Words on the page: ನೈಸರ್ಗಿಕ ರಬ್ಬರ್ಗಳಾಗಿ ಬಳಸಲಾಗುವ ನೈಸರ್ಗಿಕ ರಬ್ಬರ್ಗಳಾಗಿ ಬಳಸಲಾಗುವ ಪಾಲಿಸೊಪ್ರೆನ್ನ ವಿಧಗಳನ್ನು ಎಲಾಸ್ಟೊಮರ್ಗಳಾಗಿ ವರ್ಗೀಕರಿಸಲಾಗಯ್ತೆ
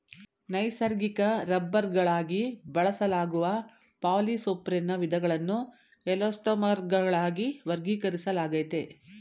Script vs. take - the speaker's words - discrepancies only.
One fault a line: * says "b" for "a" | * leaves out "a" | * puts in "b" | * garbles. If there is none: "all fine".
* leaves out "ನೈಸರ್ಗಿಕ ರಬ್ಬರ್ಗಳಾಗಿ ಬಳಸಲಾಗುವ"